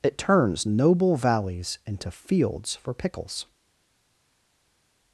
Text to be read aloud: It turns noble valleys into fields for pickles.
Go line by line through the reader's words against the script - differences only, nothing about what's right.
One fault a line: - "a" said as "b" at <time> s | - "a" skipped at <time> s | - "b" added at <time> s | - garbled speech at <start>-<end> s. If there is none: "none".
none